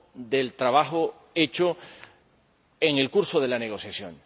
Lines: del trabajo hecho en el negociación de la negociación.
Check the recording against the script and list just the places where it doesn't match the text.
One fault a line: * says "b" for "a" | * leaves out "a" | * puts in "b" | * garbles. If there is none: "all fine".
* says "curso" for "negociación"